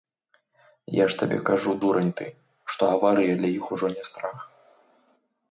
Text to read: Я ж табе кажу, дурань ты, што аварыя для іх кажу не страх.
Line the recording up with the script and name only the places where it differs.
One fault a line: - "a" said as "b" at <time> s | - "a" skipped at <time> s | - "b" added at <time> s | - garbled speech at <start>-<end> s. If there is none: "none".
- "кажу" said as "ужо" at 3.8 s